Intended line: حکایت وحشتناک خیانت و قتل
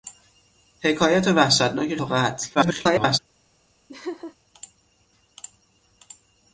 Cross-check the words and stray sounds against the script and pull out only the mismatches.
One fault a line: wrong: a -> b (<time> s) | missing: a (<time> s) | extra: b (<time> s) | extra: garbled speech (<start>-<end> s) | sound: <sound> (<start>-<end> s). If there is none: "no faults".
missing: خیانت (1.9 s)
extra: garbled speech (2.5-3.2 s)
sound: laugh (3.9-4.3 s)